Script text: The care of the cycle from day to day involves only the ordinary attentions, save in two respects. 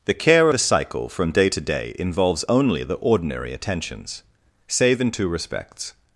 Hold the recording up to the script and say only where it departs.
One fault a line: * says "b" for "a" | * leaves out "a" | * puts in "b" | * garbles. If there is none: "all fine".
* leaves out "of"